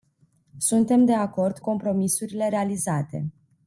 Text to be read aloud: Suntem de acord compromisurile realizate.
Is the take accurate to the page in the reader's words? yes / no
yes